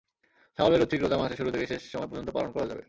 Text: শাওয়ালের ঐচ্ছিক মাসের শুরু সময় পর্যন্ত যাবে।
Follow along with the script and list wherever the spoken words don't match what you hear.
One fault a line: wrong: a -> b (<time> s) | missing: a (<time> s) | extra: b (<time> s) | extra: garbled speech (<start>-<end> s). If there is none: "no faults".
extra: রোজা (1.0 s)
extra: থেকে শেষ (1.5 s)
extra: পালন করা (2.3 s)